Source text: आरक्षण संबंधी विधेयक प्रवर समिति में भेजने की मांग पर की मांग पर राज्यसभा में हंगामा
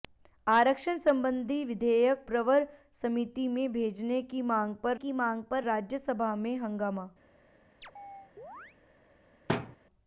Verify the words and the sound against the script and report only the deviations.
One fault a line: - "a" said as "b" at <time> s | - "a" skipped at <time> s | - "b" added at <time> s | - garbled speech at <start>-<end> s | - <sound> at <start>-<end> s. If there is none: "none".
- chirp at 7.8-8.8 s
- thud at 9.5-9.8 s